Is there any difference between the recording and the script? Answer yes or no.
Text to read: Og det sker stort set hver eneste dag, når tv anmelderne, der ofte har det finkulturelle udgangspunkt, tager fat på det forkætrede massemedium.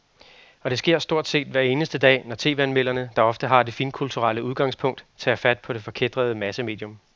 no